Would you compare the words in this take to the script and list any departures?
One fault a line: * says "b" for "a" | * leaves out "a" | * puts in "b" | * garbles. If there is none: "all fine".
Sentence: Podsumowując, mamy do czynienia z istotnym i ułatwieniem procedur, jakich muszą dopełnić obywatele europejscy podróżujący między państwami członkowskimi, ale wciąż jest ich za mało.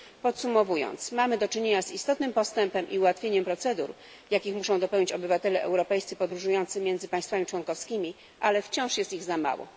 * puts in "postępem"